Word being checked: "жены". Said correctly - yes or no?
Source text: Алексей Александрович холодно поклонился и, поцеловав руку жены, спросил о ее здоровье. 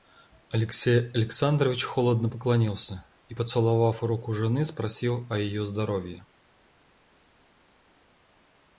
yes